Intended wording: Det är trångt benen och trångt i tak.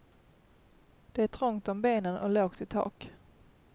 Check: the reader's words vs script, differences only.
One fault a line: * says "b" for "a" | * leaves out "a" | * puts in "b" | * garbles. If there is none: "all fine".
* puts in "om"
* says "lågt" for "trångt"